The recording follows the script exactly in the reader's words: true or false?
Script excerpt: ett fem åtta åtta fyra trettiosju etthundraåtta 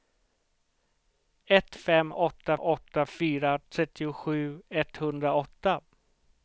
true